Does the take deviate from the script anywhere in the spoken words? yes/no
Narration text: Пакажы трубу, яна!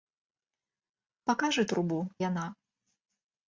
no